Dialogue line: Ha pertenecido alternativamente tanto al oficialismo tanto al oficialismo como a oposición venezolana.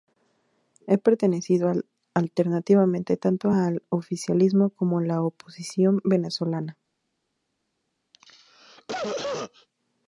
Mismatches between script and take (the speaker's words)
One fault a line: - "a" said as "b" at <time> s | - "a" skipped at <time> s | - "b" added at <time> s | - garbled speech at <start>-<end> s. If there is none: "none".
- "tanto al oficialismo" skipped at 4.7 s
- "la" added at 5.0 s